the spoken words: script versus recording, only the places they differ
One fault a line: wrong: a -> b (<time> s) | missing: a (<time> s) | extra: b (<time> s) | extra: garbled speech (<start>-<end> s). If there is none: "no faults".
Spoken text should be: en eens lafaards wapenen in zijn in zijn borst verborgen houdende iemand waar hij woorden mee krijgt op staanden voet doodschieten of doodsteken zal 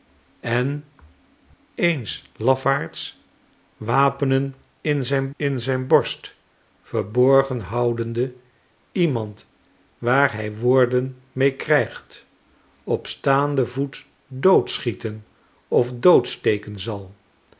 no faults